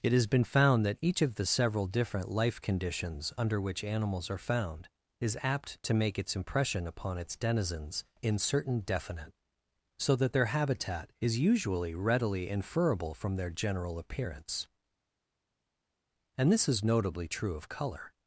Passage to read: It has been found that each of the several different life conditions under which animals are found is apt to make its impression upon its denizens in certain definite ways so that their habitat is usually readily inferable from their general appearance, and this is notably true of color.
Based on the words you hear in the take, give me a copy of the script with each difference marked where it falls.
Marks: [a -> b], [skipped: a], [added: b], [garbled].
It has been found that each of the several different life conditions under which animals are found is apt to make its impression upon its denizens in certain definite [skipped: ways] so that their habitat is usually readily inferable from their general appearance, and this is notably true of color.